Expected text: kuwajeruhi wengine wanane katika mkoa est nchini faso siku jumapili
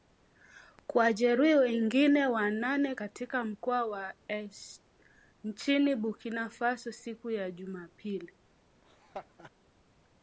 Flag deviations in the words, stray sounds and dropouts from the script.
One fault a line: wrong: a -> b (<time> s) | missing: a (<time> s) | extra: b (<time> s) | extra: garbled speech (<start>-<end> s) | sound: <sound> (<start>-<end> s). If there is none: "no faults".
extra: wa (3.9 s)
extra: burkina (6.0 s)
extra: ya (7.3 s)
sound: laugh (8.8-9.5 s)